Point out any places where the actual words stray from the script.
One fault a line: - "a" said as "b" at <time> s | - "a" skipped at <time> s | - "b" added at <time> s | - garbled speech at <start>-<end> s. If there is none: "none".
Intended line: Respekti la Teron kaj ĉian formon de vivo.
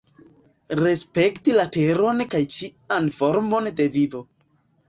none